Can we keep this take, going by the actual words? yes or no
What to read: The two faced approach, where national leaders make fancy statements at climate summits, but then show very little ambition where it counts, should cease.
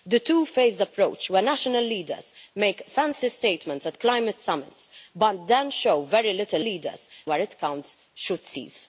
no